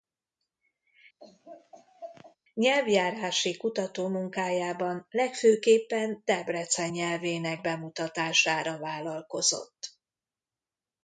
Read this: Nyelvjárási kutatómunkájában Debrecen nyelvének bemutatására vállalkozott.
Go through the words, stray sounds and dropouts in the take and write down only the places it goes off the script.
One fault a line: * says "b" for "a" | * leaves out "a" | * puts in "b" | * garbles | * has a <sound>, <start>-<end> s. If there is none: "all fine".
* has a laugh, 1.2-2.4 s
* puts in "legfőképpen"